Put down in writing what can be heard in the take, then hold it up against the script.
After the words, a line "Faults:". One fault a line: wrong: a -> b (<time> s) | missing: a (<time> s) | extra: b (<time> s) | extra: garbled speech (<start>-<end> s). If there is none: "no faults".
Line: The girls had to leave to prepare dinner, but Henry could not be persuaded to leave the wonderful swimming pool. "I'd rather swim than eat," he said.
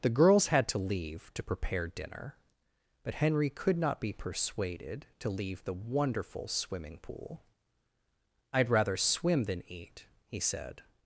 The girls had to leave to prepare dinner, but Henry could not be persuaded to leave the wonderful swimming pool. "I'd rather swim than eat," he said.
Faults:
no faults